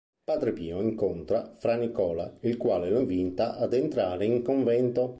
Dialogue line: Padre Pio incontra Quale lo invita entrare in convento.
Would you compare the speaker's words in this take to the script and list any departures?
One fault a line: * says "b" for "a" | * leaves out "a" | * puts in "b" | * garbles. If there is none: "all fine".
* puts in "Fra Nicola il"
* puts in "ad"